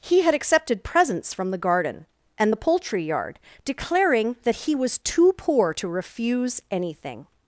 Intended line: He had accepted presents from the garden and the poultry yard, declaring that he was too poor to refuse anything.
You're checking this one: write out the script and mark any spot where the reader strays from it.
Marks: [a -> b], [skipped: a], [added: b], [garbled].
He had accepted presents from the garden and the poultry yard, declaring that he was too poor to refuse anything.